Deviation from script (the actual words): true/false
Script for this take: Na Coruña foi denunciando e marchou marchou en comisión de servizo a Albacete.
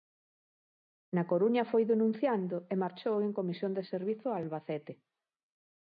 true